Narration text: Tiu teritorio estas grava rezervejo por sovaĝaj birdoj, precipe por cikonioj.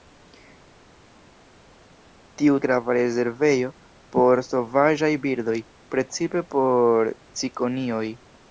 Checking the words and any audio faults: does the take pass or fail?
fail